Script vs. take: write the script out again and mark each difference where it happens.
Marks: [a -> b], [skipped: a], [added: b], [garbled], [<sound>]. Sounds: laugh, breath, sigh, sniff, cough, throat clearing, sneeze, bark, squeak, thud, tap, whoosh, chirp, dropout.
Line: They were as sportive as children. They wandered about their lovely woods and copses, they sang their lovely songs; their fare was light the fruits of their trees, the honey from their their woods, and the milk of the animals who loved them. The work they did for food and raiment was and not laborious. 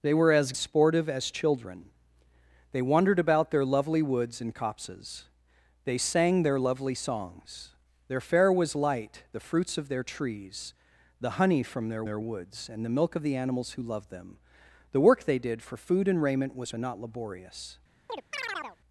They were as sportive as children. They wandered about their lovely woods and copses, they sang their lovely songs; their fare was light the fruits of their trees, the honey from their their woods, and the milk of the animals who loved them. The work they did for food and raiment was and not laborious. [chirp]